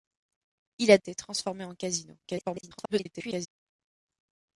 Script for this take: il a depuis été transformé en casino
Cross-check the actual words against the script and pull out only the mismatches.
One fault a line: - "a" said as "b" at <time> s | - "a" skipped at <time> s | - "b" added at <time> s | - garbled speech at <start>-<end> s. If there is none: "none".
- "depuis" skipped at 1.0 s
- garbled speech at 2.2-3.5 s